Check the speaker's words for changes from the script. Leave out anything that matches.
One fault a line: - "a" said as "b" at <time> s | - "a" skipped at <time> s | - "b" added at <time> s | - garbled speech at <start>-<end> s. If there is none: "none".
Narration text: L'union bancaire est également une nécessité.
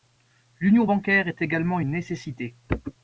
none